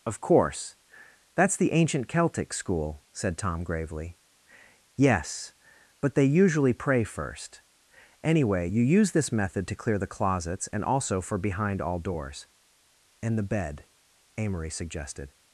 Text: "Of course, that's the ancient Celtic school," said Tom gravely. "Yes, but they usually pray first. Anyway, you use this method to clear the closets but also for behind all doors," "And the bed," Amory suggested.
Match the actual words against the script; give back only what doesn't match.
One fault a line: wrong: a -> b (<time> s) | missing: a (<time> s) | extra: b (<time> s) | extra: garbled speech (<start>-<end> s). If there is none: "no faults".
wrong: but -> and (10.7 s)